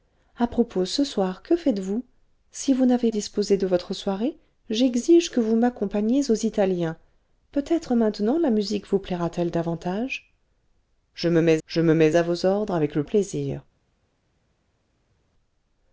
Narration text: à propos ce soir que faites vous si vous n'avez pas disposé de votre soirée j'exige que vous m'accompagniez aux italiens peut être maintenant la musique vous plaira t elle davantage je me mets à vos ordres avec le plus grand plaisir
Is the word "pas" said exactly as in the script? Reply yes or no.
no